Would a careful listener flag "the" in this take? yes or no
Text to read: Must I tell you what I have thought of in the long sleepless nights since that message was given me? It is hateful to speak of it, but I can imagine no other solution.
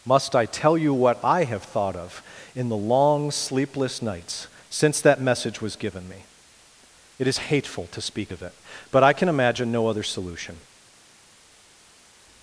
no